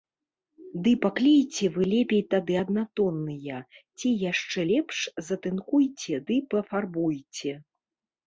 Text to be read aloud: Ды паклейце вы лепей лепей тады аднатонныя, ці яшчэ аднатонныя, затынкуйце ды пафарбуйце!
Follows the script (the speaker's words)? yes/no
no